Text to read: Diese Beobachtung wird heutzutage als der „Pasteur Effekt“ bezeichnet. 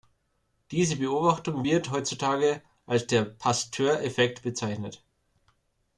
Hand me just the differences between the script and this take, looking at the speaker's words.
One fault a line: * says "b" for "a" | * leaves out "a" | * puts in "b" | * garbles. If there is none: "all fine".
all fine